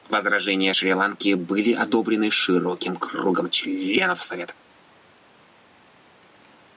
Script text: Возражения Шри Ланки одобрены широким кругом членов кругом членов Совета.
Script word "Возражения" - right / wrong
right